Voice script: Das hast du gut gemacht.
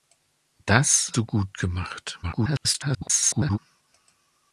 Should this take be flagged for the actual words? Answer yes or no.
yes